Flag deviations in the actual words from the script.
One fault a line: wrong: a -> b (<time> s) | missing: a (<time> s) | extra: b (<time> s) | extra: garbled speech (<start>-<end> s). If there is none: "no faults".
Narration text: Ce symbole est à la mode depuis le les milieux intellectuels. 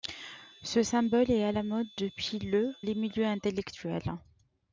no faults